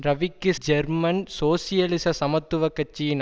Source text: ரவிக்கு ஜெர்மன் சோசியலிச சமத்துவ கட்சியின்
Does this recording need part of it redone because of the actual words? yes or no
no